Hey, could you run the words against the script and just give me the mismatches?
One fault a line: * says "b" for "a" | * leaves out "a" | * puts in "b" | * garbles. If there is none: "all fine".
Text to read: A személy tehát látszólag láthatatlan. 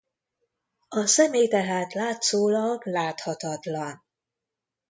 all fine